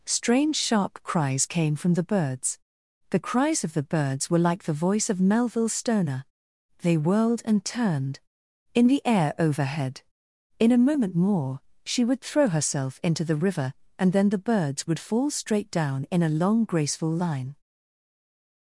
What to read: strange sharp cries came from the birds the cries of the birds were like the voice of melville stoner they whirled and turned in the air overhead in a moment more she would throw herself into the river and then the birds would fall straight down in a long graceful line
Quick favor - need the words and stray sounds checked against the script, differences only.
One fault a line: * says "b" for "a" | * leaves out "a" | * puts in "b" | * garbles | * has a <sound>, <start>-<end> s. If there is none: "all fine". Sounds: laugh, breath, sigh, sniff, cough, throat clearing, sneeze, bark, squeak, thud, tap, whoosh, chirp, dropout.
all fine